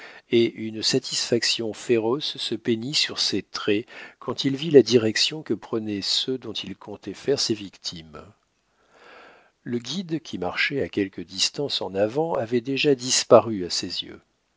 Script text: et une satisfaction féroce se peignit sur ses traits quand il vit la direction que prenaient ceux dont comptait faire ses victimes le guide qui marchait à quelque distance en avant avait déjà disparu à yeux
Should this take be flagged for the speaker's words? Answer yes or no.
yes